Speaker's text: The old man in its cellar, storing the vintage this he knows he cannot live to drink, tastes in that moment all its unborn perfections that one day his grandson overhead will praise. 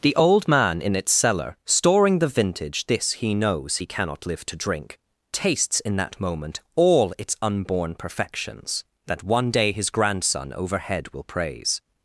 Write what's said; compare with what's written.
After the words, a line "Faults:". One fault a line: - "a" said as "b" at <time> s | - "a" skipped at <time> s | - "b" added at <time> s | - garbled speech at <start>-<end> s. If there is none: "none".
The old man in its cellar, storing the vintage this he knows he cannot live to drink, tastes in that moment all its unborn perfections that one day his grandson overhead will praise.
Faults:
none